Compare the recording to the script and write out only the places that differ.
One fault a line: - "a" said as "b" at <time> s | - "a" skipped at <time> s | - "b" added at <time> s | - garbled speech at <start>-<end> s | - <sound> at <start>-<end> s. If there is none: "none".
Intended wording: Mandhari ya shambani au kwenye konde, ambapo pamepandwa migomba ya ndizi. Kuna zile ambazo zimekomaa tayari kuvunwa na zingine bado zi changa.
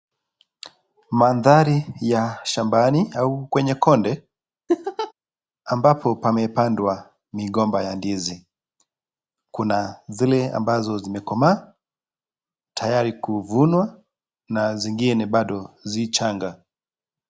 - laugh at 4.7-5.1 s